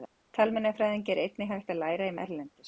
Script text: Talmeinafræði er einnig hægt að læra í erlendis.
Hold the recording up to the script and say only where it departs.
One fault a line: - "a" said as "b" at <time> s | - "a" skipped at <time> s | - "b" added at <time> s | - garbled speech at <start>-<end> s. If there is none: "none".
none